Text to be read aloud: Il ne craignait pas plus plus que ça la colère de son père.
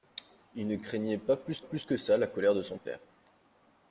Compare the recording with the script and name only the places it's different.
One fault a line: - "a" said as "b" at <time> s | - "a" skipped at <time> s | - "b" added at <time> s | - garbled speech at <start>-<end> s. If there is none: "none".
none